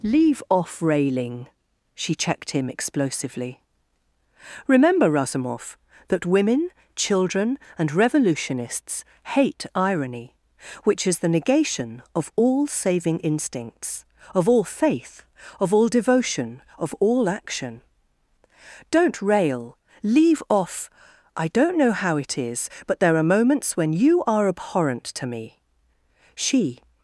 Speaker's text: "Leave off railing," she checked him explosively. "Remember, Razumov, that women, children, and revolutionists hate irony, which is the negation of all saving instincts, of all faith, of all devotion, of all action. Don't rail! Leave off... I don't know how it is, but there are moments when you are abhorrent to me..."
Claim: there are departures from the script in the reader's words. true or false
true